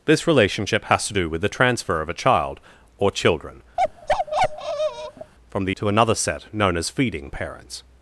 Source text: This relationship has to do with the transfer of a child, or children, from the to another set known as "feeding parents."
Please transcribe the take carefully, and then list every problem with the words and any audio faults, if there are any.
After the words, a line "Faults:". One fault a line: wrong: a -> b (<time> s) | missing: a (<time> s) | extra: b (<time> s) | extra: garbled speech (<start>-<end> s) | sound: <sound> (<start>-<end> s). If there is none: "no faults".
This relationship has to do with the transfer of a child, or children, from the to another set known as "feeding parents."
Faults:
sound: bark (3.8-5.3 s)